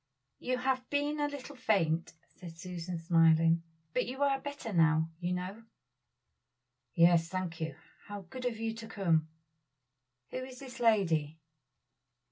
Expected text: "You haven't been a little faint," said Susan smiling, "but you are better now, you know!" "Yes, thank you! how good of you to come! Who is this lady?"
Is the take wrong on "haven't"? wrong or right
wrong